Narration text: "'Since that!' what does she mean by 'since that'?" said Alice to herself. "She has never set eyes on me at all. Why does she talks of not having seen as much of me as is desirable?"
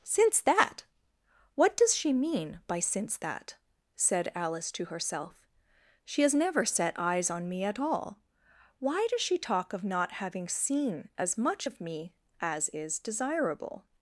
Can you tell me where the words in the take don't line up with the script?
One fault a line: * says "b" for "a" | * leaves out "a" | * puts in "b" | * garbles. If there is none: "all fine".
* says "talk" for "talks"